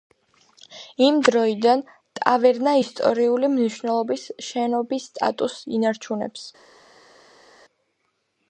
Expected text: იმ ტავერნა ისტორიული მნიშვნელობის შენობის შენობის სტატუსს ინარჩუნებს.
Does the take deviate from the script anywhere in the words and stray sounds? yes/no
yes